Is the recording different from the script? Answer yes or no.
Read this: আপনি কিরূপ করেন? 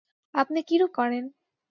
no